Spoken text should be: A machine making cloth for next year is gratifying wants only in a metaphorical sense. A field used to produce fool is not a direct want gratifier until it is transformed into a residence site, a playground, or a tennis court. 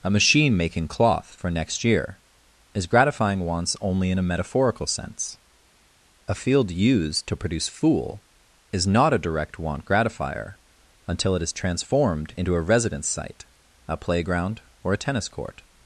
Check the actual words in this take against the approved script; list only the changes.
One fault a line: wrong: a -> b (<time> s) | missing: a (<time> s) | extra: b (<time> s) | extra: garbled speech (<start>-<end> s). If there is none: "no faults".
no faults